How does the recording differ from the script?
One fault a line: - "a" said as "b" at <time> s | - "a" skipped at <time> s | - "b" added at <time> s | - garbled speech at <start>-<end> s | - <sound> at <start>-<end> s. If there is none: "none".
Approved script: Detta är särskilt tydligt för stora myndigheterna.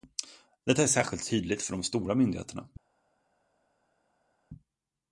- "de" added at 1.7 s